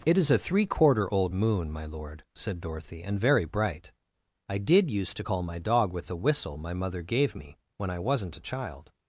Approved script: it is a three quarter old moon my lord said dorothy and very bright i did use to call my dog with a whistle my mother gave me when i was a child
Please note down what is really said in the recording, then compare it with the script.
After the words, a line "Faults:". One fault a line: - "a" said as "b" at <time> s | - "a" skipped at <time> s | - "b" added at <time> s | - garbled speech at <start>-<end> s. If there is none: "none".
it is a three quarter old moon my lord said dorothy and very bright i did use to call my dog with a whistle my mother gave me when i wasn't a child
Faults:
- "was" said as "wasn't" at 8.0 s